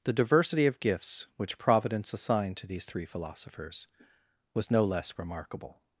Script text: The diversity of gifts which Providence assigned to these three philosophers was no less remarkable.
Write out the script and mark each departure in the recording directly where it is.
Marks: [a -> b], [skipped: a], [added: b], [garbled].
The diversity of gifts which Providence assigned to these three philosophers was no less remarkable.